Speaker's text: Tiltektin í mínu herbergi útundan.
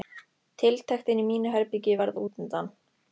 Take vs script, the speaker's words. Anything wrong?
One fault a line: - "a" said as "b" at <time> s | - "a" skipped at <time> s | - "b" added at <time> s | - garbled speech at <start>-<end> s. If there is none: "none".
- "varð" added at 2.0 s